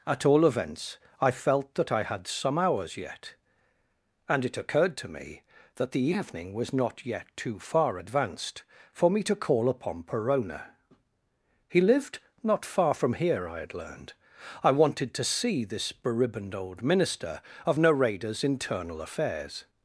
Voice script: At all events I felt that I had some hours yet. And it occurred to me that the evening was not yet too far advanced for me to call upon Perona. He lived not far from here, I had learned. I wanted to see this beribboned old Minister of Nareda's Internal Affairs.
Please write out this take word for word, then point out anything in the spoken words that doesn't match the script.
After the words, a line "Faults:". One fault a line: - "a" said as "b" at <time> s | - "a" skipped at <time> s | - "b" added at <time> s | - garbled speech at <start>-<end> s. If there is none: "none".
At all events I felt that I had some hours yet. And it occurred to me that the evening was not yet too far advanced for me to call upon Perona. He lived not far from here, I had learned. I wanted to see this beribboned old Minister of Nareda's Internal Affairs.
Faults:
none